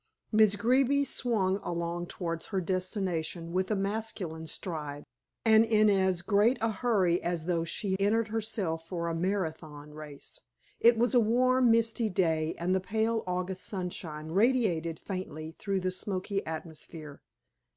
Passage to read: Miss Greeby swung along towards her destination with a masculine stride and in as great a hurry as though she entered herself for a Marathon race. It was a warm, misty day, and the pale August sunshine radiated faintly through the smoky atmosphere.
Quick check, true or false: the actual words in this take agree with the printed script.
true